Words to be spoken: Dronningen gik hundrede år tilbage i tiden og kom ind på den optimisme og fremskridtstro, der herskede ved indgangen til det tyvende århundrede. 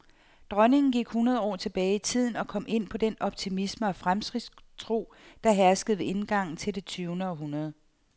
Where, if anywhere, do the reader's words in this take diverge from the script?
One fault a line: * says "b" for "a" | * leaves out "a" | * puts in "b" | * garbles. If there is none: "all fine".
all fine